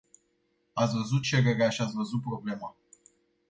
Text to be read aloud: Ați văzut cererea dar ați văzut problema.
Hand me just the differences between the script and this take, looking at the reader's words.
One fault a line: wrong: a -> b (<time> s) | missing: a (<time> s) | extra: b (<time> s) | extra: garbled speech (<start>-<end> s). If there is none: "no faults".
wrong: dar -> și (1.7 s)